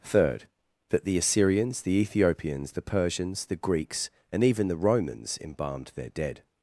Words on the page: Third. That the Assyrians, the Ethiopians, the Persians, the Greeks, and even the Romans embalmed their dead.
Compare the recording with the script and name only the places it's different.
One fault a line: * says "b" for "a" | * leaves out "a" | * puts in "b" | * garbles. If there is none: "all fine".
all fine